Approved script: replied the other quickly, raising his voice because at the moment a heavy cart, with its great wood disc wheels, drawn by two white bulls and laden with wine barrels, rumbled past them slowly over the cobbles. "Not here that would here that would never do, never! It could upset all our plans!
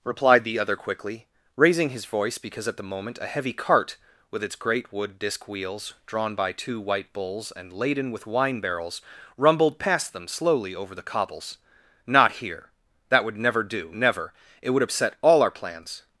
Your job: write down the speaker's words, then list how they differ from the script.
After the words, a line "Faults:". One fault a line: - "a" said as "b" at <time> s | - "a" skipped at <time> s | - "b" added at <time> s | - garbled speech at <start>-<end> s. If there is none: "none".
replied the other quickly, raising his voice because at the moment a heavy cart, with its great wood disc wheels, drawn by two white bulls and laden with wine barrels, rumbled past them slowly over the cobbles. "Not here that would never do, never! It would upset all our plans!
Faults:
- "here that would" skipped at 13.4 s
- "could" said as "would" at 14.7 s